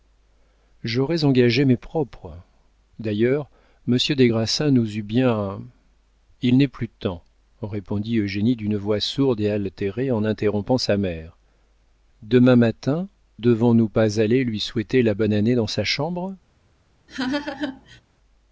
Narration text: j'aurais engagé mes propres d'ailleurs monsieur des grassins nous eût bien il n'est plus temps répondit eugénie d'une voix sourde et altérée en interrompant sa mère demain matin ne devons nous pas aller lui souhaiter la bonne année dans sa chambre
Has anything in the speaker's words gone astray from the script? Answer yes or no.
yes